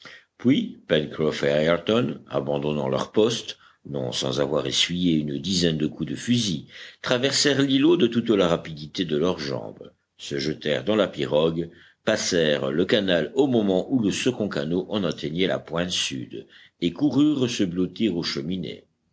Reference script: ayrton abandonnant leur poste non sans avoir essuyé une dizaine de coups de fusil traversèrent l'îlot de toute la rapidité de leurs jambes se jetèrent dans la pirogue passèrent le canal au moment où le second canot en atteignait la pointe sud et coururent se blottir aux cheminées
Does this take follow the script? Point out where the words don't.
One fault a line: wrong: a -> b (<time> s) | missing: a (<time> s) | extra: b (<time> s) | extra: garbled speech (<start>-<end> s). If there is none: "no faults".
no faults